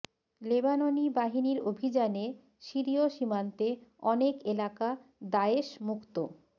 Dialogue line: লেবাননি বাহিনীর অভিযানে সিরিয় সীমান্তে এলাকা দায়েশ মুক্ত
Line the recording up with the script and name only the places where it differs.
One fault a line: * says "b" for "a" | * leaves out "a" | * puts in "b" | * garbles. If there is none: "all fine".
* puts in "অনেক"